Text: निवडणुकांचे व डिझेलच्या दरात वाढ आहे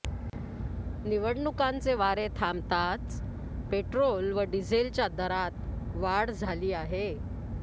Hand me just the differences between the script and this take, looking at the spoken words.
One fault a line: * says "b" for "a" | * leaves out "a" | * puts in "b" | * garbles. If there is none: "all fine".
* puts in "वारे थांबताच पेट्रोल"
* puts in "झाली"